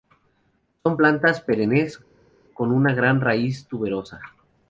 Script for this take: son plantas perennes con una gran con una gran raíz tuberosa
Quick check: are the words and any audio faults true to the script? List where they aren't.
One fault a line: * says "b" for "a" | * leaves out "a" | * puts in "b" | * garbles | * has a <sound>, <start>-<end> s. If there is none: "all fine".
* leaves out "con una gran"